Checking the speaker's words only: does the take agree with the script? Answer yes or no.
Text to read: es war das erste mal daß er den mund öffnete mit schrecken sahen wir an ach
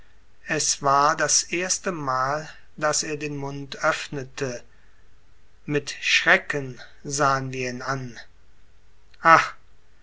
no